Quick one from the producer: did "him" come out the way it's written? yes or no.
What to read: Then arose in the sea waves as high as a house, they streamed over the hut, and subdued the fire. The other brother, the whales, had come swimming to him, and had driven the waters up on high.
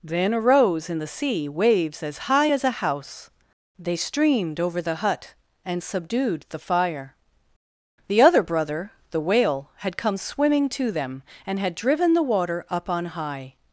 no